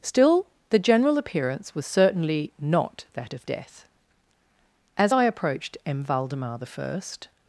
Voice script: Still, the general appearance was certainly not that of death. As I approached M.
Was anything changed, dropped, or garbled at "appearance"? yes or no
no